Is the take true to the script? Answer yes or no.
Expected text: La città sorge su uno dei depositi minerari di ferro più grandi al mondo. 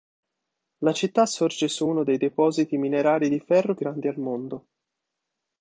no